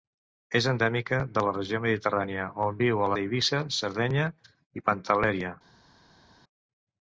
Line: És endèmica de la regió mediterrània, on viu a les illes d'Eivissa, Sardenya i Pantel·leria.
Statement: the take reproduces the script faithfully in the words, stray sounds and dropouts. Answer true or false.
false